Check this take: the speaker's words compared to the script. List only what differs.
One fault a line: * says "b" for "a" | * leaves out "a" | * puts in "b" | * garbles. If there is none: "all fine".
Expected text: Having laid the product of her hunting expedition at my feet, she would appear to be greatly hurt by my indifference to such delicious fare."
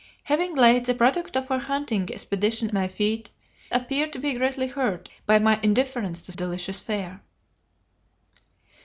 * leaves out "at"
* leaves out "she would"
* leaves out "such"